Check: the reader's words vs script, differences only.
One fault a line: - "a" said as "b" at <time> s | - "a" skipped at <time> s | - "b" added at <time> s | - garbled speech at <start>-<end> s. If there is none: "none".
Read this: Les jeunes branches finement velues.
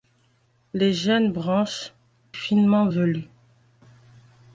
none